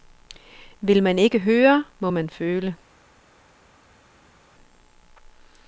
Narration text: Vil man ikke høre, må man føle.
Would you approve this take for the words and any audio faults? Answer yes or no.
yes